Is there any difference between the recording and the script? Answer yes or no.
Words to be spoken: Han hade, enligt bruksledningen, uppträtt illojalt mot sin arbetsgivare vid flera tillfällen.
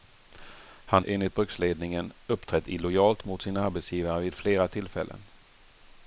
yes